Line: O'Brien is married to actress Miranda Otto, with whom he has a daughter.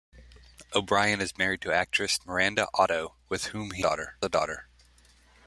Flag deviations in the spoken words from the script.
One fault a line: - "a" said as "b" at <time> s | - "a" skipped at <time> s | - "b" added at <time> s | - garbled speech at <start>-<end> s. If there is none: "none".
- "has" said as "daughter" at 3.8 s